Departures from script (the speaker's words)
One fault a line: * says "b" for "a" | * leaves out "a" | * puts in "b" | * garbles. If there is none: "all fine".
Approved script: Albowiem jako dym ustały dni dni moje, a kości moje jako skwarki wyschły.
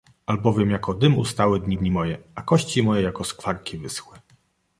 all fine